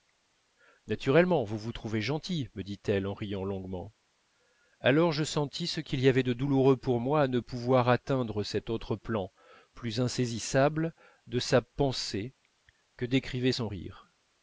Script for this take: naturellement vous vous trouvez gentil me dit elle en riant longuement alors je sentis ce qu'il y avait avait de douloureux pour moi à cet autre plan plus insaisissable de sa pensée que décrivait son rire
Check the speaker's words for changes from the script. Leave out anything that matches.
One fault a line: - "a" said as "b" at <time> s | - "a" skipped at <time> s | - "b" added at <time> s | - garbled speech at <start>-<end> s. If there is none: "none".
- "avait" skipped at 6.2 s
- "ne pouvoir atteindre" added at 7.3 s